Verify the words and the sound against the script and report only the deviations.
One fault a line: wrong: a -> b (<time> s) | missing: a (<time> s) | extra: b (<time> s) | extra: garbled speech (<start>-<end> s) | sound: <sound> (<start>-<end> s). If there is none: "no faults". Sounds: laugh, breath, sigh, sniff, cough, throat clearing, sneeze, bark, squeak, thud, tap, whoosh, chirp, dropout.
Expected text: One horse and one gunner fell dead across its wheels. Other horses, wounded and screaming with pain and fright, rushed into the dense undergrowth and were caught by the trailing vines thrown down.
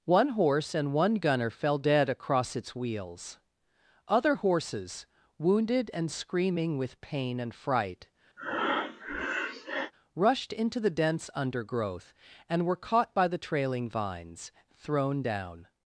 sound: breath (8.4-9.9 s)